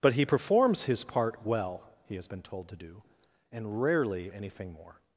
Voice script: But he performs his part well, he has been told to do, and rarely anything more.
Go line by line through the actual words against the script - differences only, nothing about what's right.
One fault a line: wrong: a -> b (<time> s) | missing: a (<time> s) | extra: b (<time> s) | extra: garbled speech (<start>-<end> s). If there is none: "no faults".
no faults